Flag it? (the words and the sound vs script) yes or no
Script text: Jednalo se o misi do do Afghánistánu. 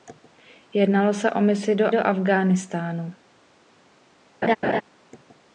yes